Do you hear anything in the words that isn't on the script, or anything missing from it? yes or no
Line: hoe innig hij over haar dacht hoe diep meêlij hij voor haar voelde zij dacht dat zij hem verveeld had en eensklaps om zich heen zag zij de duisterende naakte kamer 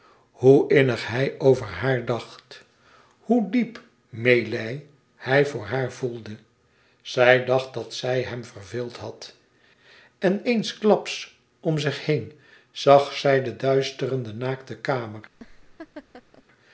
no